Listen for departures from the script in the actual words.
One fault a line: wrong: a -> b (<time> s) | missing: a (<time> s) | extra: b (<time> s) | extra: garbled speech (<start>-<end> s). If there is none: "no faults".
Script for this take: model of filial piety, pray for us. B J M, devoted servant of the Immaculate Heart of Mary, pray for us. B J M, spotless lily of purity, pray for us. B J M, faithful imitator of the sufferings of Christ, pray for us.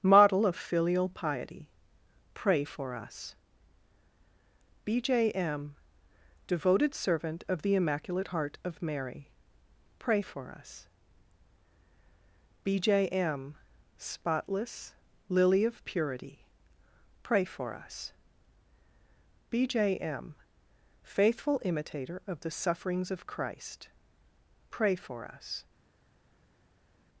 no faults